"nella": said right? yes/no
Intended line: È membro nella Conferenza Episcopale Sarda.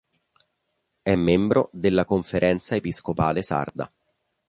no